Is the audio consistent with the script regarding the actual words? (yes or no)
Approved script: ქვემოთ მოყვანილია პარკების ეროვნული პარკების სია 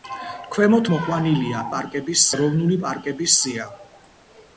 yes